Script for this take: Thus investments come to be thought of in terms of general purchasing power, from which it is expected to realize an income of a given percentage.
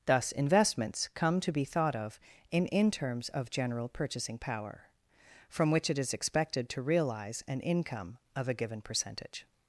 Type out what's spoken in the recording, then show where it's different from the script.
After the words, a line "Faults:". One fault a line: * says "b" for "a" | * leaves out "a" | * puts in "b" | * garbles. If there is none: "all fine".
Thus investments come to be thought of in in terms of general purchasing power, from which it is expected to realize an income of a given percentage.
Faults:
* puts in "in"